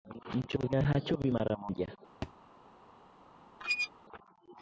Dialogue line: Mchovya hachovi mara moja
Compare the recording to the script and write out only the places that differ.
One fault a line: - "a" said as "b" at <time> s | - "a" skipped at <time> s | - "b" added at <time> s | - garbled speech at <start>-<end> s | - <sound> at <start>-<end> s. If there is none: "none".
- thud at 2.2-2.3 s
- squeak at 3.6-3.9 s